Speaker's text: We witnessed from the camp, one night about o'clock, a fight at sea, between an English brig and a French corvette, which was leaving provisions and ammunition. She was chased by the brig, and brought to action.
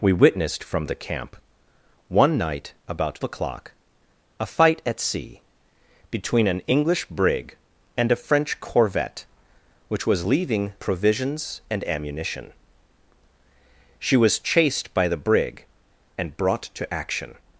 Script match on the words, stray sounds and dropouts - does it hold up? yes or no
yes